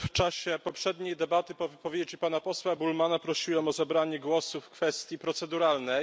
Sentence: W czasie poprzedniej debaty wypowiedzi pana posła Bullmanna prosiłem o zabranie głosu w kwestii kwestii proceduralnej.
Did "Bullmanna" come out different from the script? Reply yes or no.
no